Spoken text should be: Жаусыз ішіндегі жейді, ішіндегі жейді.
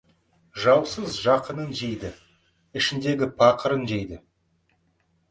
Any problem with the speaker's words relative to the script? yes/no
yes